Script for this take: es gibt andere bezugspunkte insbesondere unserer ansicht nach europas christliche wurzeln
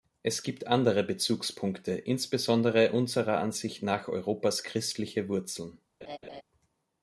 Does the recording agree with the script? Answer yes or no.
yes